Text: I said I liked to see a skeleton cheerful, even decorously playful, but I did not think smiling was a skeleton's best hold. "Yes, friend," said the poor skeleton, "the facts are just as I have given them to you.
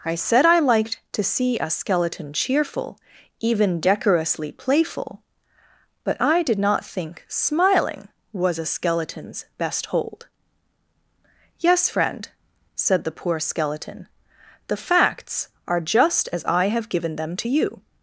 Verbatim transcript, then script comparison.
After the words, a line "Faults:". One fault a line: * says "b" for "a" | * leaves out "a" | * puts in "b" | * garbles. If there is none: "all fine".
I said I liked to see a skeleton cheerful, even decorously playful, but I did not think smiling was a skeleton's best hold. "Yes, friend," said the poor skeleton, "the facts are just as I have given them to you.
Faults:
all fine